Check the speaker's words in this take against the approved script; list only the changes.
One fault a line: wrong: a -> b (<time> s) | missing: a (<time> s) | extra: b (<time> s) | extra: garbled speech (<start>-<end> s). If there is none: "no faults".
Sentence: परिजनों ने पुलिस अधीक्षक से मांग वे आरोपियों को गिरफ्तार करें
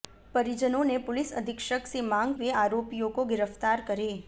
no faults